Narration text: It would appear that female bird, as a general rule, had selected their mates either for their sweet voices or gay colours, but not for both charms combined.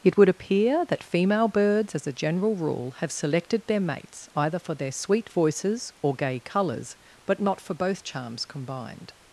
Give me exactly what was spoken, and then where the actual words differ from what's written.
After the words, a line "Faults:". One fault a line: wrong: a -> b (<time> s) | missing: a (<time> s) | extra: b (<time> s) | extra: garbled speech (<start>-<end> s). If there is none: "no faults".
It would appear that female birds, as a general rule, have selected their mates either for their sweet voices or gay colours, but not for both charms combined.
Faults:
wrong: bird -> birds (1.5 s)
wrong: had -> have (3.0 s)